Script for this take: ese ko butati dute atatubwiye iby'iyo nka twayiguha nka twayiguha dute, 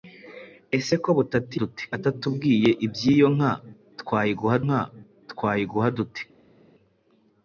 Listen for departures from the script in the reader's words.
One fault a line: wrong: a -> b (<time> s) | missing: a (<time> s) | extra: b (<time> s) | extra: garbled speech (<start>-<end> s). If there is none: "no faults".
no faults